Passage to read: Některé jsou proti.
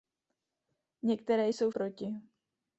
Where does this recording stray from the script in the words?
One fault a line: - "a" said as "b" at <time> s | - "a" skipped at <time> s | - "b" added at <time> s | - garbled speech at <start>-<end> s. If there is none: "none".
none